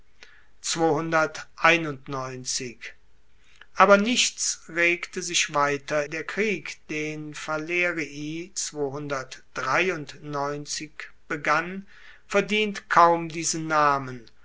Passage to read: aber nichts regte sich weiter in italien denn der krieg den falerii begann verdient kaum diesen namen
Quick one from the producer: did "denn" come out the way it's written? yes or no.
no